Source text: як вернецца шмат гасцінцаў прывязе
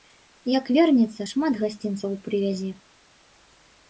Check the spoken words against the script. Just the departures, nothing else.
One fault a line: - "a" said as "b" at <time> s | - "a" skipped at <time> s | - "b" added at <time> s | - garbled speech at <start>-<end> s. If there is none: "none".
none